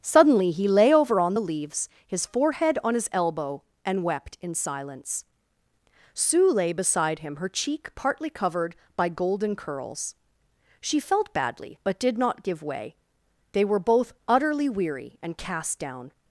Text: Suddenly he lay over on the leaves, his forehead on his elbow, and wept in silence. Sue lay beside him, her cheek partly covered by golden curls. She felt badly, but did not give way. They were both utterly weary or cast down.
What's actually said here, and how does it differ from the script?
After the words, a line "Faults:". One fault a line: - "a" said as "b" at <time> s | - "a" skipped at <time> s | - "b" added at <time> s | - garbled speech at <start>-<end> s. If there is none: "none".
Suddenly he lay over on the leaves, his forehead on his elbow, and wept in silence. Sue lay beside him, her cheek partly covered by golden curls. She felt badly, but did not give way. They were both utterly weary and cast down.
Faults:
- "or" said as "and" at 15.2 s